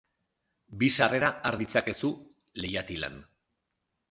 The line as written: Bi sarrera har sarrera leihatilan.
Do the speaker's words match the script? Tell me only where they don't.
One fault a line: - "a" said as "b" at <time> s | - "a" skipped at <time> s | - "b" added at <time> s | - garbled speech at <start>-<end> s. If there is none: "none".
- "sarrera" said as "ditzakezu" at 1.6 s